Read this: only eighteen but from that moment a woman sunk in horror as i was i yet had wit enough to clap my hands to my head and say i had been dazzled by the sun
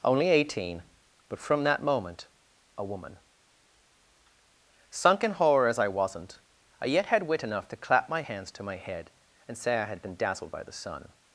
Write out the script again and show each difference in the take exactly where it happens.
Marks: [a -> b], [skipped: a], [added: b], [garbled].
only eighteen but from that moment a woman sunk in horror as i [was -> wasn't] i yet had wit enough to clap my hands to my head and say i had been dazzled by the sun